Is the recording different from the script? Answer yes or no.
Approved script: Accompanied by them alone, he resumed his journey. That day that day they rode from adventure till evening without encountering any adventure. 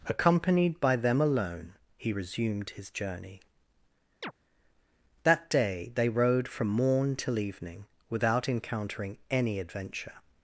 yes